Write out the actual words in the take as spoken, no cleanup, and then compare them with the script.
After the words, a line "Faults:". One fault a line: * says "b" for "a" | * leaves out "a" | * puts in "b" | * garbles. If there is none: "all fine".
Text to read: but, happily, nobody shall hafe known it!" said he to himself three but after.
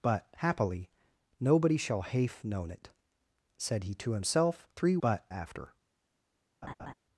but, happily, nobody shall hafe known it!" said he to himself three but after.
Faults:
all fine